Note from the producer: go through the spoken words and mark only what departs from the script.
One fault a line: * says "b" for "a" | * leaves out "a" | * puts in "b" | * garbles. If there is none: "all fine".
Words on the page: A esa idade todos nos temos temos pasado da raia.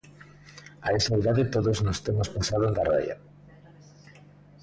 * leaves out "temos"